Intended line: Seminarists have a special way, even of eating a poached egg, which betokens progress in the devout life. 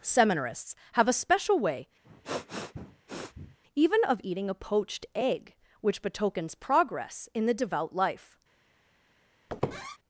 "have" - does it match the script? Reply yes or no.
yes